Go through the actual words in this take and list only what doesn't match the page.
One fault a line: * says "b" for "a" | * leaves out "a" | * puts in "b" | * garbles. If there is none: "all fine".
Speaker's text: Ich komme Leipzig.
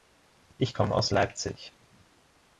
* puts in "aus"